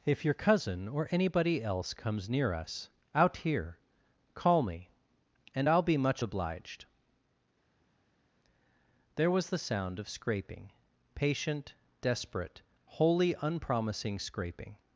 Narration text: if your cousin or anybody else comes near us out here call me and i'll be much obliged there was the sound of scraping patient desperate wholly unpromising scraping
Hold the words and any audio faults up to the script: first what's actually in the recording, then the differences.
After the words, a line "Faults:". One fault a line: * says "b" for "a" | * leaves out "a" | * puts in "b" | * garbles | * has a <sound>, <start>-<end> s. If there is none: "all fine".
if your cousin or anybody else comes near us out here call me and i'll be much obliged there was the sound of scraping patient desperate wholly unpromising scraping
Faults:
all fine